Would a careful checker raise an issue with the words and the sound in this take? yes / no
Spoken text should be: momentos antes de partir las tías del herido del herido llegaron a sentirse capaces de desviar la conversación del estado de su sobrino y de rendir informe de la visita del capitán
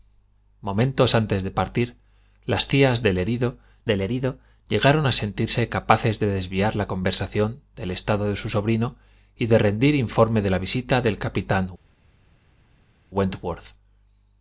no